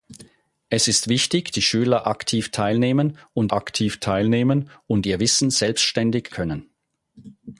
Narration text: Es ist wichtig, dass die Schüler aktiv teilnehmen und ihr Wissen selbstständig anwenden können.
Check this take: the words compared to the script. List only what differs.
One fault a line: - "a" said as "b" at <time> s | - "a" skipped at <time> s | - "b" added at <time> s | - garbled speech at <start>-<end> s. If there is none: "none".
- "dass" skipped at 1.5 s
- "aktiv teilnehmen und" added at 3.5 s
- "anwenden" skipped at 6.3 s